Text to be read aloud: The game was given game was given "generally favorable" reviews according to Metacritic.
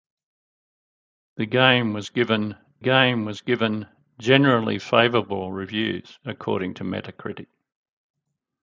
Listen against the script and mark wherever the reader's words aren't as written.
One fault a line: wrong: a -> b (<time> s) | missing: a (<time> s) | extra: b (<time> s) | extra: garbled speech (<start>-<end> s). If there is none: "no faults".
no faults